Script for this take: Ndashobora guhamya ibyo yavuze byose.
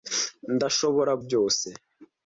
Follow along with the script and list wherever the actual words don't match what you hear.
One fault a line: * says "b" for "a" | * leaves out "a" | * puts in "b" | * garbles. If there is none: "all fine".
* leaves out "guhamya ibyo yavuze"